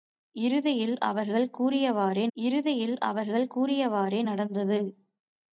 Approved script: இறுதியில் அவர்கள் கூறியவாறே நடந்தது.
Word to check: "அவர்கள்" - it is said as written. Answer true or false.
true